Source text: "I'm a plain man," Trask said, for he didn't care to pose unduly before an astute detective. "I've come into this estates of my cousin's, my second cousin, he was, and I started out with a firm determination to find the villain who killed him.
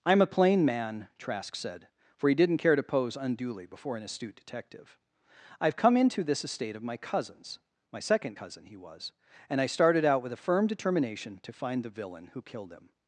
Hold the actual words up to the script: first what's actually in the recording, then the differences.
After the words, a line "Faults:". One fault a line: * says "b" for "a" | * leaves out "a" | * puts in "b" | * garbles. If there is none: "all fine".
"I'm a plain man," Trask said, for he didn't care to pose unduly before an astute detective. "I've come into this estate of my cousin's, my second cousin, he was, and I started out with a firm determination to find the villain who killed him.
Faults:
* says "estate" for "estates"